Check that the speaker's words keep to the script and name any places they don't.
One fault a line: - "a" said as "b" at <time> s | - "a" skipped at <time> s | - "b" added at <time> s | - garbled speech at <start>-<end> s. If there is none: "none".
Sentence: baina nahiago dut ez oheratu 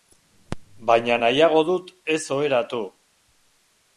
none